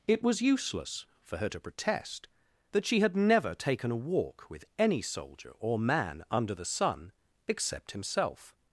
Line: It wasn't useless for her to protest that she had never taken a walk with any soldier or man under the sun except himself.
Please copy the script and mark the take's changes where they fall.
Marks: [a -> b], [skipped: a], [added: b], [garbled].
It [wasn't -> was] useless for her to protest that she had never taken a walk with any soldier or man under the sun except himself.